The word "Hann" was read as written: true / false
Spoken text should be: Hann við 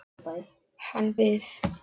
true